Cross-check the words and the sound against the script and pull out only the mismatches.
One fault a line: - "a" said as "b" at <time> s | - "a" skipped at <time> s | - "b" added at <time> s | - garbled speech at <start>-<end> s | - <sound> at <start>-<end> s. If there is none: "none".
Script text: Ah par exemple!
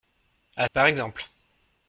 none